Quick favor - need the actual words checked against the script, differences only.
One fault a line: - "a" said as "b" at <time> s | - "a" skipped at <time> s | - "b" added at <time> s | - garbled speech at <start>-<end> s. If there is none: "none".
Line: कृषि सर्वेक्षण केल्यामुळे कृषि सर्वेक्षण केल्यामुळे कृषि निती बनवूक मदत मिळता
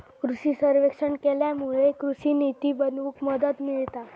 - "सर्वेक्षण केल्यामुळे कृषि" skipped at 2.3 s